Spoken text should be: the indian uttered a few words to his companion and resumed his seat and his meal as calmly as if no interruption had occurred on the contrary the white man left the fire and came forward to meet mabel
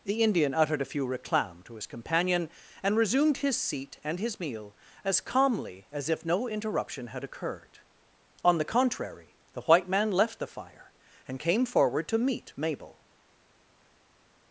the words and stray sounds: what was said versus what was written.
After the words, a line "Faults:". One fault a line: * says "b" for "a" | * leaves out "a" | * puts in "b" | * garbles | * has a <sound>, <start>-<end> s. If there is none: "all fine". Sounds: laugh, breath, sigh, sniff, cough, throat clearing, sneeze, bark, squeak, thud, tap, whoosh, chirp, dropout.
the indian uttered a few reclam to his companion and resumed his seat and his meal as calmly as if no interruption had occurred on the contrary the white man left the fire and came forward to meet mabel
Faults:
* says "reclam" for "words"